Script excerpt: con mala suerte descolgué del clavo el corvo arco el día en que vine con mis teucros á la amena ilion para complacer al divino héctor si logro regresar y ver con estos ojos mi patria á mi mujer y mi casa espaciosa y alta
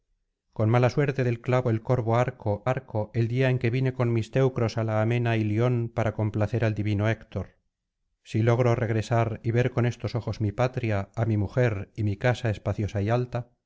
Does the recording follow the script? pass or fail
fail